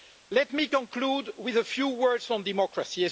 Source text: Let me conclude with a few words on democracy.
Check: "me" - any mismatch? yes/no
no